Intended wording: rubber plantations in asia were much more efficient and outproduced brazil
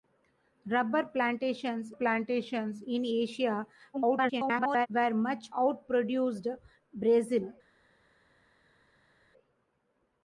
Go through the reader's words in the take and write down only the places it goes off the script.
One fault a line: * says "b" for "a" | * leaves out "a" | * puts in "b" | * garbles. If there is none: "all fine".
* puts in "plantations"
* garbles
* leaves out "more efficient and"